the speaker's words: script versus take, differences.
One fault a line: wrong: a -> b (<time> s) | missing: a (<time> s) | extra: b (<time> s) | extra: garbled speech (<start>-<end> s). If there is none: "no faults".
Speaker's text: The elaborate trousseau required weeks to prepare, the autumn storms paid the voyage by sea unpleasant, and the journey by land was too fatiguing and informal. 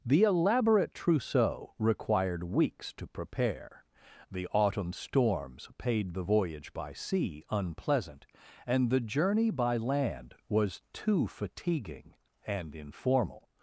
no faults